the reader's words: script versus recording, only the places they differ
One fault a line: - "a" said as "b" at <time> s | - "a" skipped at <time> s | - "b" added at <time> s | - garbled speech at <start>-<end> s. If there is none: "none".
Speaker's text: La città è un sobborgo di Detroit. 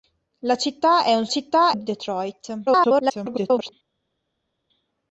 - "sobborgo" said as "città" at 1.3 s
- garbled speech at 2.7-3.7 s